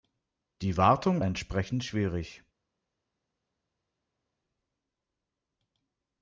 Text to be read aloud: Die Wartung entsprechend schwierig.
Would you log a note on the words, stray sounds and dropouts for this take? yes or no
no